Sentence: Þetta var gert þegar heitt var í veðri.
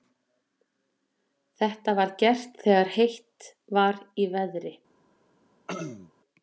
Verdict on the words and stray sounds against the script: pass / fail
fail